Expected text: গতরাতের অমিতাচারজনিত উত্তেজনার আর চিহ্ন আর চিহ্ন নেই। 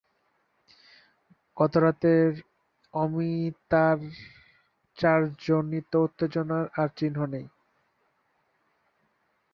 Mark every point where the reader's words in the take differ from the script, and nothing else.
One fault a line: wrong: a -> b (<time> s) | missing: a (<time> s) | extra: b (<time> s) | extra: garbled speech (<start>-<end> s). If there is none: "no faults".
missing: আর চিহ্ন (7.2 s)